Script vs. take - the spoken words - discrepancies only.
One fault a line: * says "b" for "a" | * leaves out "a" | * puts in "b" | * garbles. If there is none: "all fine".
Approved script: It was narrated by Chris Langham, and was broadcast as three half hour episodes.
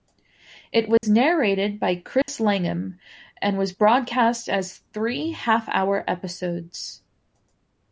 all fine